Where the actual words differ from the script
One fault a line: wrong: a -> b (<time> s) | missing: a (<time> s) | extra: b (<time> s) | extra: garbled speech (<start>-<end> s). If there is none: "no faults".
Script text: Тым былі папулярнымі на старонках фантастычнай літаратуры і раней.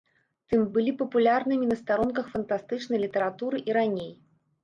no faults